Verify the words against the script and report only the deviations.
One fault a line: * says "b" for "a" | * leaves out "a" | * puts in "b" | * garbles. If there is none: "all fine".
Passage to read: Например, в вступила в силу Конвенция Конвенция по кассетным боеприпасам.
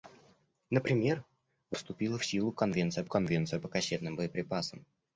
all fine